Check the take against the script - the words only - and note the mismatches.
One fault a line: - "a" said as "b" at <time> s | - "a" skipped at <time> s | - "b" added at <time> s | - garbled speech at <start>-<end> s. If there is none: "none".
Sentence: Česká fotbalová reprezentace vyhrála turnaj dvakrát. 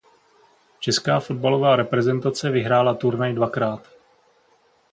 none